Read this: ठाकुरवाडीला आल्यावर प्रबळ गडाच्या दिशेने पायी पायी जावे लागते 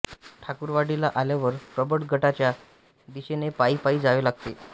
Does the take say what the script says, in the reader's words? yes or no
yes